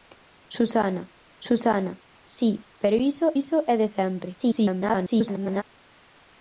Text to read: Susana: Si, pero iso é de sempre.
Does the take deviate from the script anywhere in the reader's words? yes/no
yes